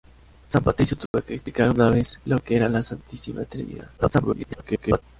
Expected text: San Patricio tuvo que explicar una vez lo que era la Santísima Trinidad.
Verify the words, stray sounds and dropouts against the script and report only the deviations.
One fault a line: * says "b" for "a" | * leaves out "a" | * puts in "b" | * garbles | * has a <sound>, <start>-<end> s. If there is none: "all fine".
* has a dropout, 1.1-1.1 s
* garbles